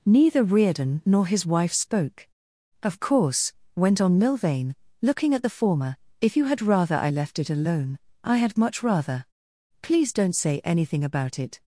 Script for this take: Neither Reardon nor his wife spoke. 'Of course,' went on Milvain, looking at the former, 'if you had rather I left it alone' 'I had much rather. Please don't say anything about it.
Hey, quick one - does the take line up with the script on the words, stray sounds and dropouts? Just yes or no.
yes